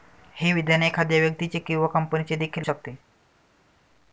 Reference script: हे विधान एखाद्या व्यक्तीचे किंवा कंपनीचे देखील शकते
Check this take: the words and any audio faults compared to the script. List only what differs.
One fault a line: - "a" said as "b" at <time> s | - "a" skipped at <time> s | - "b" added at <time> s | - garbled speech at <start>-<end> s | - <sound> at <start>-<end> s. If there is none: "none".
none